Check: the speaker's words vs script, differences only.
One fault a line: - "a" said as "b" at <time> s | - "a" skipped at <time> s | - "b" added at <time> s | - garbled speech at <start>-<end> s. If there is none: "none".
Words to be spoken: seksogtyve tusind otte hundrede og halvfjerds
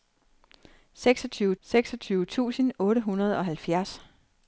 - "seksogtyve" added at 1.6 s